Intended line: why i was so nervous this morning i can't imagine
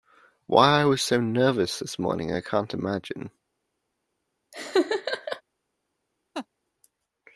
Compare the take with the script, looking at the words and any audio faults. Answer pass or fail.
fail